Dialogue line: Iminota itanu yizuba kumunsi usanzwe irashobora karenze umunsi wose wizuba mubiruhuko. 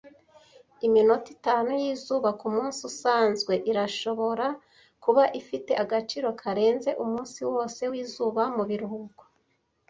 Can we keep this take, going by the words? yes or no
no